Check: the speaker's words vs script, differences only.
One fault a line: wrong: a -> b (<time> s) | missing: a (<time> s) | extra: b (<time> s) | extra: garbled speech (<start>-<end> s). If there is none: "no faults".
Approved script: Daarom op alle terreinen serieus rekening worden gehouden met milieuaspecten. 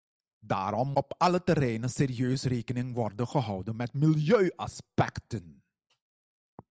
no faults